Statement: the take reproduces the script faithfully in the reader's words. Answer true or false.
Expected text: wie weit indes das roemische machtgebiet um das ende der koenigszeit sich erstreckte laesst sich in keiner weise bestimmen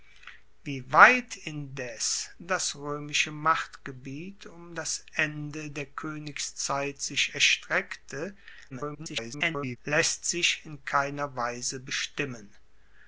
false